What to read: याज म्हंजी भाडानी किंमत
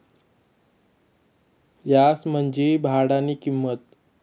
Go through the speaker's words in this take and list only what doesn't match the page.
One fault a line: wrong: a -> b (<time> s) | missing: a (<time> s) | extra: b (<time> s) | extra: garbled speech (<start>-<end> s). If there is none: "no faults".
no faults